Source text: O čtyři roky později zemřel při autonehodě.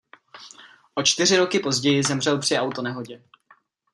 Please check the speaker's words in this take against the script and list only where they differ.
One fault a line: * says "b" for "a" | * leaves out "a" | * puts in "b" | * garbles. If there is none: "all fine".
all fine